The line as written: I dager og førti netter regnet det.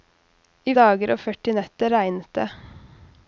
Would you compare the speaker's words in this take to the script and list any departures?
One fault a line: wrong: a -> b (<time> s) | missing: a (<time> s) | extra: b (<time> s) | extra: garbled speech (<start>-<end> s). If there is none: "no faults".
no faults